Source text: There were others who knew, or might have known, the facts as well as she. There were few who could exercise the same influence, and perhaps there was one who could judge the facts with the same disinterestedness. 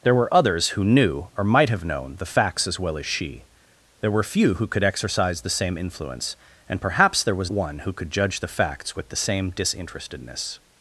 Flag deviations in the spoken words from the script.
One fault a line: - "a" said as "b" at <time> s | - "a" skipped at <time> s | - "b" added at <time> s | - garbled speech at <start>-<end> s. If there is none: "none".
none